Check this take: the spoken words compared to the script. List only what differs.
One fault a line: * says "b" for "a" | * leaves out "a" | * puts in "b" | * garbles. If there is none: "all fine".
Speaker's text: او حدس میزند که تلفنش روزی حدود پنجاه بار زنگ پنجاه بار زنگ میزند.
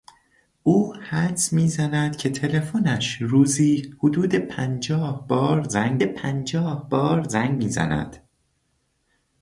all fine